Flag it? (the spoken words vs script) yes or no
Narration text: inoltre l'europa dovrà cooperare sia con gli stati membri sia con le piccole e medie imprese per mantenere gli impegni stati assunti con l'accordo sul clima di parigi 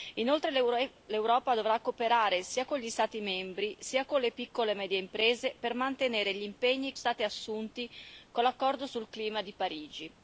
no